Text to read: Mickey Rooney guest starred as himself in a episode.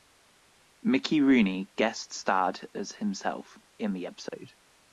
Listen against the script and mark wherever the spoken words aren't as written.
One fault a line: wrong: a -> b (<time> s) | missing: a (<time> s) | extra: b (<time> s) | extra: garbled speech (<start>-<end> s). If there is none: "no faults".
wrong: a -> the (3.9 s)